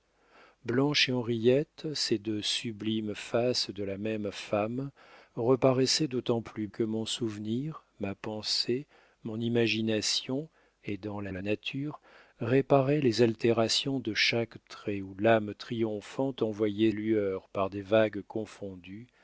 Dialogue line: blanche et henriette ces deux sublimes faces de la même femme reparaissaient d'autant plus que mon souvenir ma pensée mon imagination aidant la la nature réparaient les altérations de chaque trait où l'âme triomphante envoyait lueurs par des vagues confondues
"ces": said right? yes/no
yes